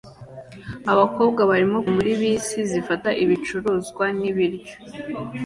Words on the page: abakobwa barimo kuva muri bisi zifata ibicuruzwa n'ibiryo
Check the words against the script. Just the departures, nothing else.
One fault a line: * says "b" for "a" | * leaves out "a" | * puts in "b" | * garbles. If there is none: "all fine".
* leaves out "kuva"